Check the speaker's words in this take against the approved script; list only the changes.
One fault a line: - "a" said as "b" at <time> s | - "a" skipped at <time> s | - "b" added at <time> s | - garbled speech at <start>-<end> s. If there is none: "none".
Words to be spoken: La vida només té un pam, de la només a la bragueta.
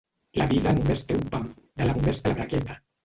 none